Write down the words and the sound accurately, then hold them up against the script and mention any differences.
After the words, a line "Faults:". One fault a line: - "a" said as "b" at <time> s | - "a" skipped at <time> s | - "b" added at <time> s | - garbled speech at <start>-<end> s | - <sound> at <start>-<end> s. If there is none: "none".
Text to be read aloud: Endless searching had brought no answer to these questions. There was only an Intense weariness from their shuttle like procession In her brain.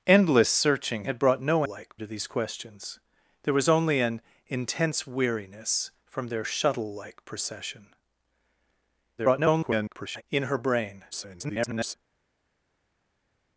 Endless searching had brought no like to these questions. There was only an Intense weariness from their shuttle like procession [garbled] In her brain. [garbled]
Faults:
- "answer" said as "like" at 1.7 s
- garbled speech at 9.2-10.2 s
- garbled speech at 11.1-12.0 s